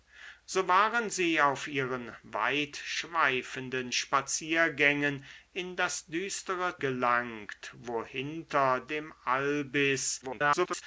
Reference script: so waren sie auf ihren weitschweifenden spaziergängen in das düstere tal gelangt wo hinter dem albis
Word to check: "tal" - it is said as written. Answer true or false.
false